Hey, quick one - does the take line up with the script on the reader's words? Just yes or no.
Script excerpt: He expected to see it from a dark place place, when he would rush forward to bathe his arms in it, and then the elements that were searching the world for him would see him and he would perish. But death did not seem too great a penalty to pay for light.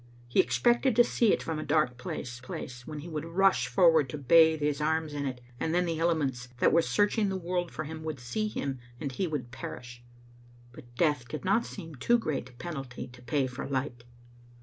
yes